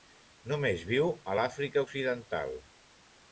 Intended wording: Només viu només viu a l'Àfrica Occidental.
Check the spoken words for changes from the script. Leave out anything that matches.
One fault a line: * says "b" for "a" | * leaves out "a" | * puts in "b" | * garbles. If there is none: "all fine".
* leaves out "només viu"